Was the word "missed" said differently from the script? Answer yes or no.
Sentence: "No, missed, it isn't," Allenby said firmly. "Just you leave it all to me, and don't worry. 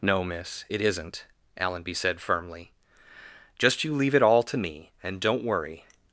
yes